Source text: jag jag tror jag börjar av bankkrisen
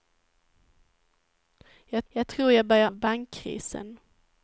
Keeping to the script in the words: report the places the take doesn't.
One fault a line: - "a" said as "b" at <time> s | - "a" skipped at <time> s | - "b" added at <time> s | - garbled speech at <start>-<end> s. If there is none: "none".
none